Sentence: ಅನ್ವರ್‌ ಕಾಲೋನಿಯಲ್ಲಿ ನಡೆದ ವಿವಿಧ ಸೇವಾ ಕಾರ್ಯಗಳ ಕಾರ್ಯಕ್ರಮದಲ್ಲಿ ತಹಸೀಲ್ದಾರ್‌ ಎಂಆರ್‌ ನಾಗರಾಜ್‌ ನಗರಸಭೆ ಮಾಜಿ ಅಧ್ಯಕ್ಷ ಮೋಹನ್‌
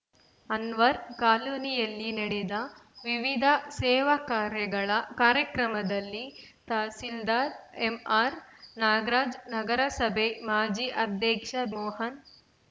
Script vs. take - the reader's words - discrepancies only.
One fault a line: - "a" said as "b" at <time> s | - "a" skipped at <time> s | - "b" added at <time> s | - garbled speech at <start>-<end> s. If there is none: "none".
none